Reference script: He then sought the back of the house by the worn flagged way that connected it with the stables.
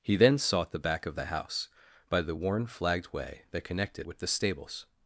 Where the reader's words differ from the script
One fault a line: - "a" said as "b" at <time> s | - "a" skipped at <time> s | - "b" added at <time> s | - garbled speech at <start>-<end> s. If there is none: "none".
- "it" skipped at 4.1 s